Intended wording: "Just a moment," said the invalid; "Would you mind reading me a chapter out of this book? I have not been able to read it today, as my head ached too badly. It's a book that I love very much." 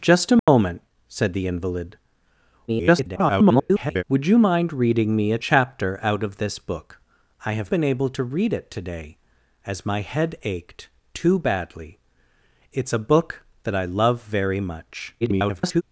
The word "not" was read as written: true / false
false